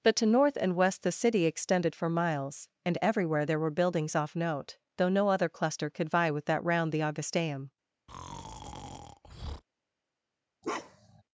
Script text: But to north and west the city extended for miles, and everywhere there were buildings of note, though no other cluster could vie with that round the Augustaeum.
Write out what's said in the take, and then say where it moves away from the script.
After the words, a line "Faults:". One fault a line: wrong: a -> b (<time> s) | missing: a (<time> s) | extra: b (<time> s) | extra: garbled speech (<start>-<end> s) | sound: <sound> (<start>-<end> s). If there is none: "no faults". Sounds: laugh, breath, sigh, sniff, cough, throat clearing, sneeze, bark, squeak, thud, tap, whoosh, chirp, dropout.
But to north and west the city extended for miles, and everywhere there were buildings off note, though no other cluster could vie with that round the Augustaeum.
Faults:
wrong: of -> off (4.2 s)
sound: breath (8.1-9.6 s)
sound: bark (10.6-11.2 s)